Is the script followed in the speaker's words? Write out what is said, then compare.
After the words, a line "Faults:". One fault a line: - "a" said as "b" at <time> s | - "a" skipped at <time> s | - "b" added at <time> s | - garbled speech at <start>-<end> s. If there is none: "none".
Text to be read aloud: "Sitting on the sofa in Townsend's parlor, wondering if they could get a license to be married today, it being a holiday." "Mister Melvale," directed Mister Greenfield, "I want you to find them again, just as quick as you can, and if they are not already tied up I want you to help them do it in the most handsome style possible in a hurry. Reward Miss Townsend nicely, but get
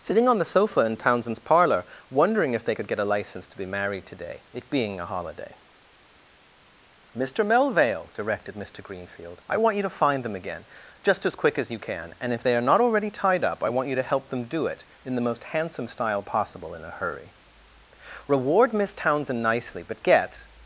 "Sitting on the sofa in Townsend's parlor, wondering if they could get a license to be married today, it being a holiday." "Mister Melvale," directed Mister Greenfield, "I want you to find them again, just as quick as you can, and if they are not already tied up I want you to help them do it in the most handsome style possible in a hurry. Reward Miss Townsend nicely, but get
Faults:
none